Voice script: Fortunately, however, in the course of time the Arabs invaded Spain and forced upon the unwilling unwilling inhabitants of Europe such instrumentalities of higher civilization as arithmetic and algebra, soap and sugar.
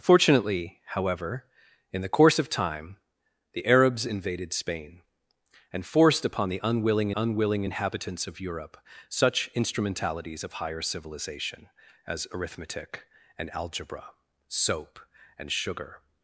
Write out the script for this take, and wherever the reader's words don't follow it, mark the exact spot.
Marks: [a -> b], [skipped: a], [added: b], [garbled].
Fortunately, however, in the course of time the Arabs invaded Spain and forced upon the unwilling unwilling inhabitants of Europe such instrumentalities of higher civilization as arithmetic and algebra, soap and sugar.